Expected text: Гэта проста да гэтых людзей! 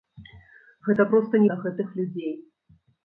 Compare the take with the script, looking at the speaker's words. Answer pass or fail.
pass